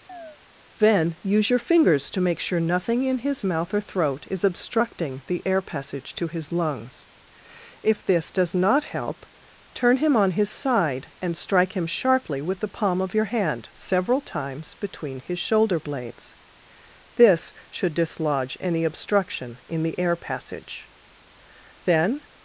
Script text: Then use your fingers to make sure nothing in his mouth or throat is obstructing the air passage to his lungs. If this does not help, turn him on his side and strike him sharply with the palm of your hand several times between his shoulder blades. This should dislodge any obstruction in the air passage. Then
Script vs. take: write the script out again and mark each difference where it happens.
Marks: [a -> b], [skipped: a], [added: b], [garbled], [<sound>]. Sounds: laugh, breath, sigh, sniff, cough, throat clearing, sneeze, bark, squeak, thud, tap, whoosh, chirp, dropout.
[chirp] Then use your fingers to make sure nothing in his mouth or throat is obstructing the air passage to his lungs. If this does not help, turn him on his side and strike him sharply with the palm of your hand several times between his shoulder blades. This should dislodge any obstruction in the air passage. Then